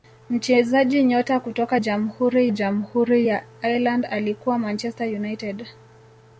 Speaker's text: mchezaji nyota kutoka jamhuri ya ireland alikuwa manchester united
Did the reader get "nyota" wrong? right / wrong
right